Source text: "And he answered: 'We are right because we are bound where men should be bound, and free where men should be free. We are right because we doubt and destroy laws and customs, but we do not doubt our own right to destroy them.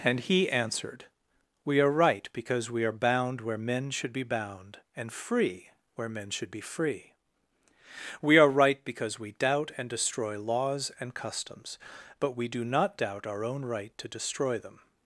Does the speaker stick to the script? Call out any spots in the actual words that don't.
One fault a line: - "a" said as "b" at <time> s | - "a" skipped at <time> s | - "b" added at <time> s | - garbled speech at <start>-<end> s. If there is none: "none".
none